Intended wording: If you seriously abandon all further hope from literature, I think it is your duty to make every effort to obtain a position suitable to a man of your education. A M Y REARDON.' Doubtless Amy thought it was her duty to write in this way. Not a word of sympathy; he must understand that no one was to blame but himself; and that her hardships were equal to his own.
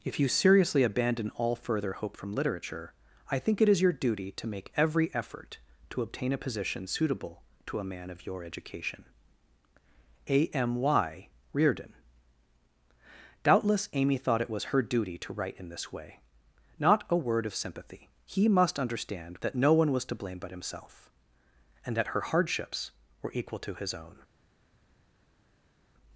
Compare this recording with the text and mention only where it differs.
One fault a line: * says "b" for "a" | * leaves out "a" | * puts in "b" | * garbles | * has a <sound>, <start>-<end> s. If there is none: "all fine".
all fine